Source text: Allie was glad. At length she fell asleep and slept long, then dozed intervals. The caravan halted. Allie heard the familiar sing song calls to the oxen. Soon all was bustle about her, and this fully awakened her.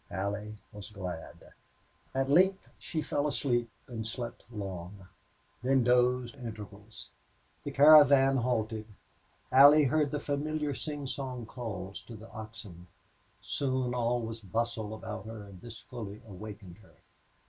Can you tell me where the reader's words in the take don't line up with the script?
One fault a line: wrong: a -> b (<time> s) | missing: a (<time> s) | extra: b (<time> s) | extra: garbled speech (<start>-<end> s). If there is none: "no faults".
no faults